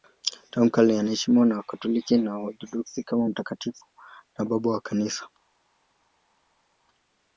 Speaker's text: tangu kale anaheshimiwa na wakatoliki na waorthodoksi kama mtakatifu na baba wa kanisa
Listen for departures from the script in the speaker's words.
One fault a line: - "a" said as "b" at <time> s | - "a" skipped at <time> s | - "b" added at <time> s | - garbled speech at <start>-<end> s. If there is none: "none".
none